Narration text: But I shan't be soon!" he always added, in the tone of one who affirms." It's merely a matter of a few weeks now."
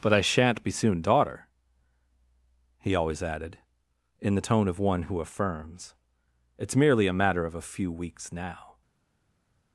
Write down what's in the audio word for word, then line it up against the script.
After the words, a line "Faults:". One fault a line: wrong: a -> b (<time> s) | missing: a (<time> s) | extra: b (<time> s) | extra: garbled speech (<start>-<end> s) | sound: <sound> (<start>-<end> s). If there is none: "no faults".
But I shan't be soon!" daughter he always added, in the tone of one who affirms." It's merely a matter of a few weeks now."
Faults:
extra: daughter (1.0 s)